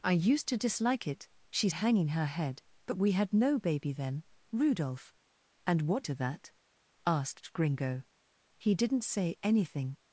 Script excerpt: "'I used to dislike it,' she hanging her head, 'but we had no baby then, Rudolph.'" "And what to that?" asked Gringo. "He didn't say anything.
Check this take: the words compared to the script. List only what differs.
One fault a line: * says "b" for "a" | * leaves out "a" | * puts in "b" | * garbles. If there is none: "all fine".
all fine